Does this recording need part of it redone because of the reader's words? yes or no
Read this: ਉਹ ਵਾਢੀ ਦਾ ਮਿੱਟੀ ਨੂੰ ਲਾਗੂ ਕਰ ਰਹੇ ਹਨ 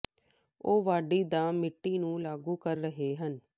no